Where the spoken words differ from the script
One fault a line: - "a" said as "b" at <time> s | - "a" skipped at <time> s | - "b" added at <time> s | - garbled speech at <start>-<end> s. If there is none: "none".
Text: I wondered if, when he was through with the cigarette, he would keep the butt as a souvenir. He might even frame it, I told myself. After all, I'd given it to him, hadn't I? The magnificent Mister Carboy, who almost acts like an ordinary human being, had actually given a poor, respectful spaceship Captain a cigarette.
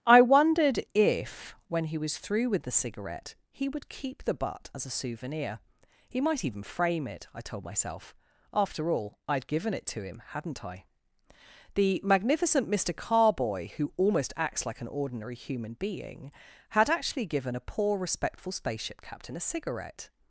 none